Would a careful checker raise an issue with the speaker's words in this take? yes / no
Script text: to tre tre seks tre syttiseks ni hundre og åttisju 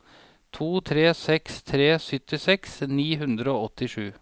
yes